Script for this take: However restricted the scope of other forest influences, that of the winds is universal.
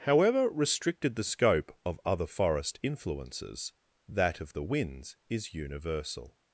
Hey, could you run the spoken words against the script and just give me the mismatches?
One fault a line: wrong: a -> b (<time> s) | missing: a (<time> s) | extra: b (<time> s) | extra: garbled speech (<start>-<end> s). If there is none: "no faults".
no faults